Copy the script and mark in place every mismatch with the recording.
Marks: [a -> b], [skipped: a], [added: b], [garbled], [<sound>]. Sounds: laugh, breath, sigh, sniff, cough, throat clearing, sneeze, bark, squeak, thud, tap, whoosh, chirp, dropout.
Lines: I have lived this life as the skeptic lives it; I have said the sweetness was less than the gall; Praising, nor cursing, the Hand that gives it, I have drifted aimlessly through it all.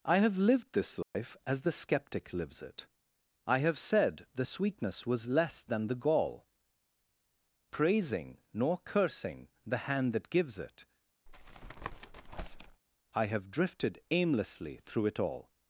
I have lived this life [dropout] as the skeptic lives it; I have said the sweetness was less than the gall; Praising, nor cursing, the Hand that gives it, [tap] I have drifted aimlessly through it all.